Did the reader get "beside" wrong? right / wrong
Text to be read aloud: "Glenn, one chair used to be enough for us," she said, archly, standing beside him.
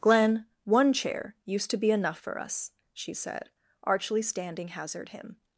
wrong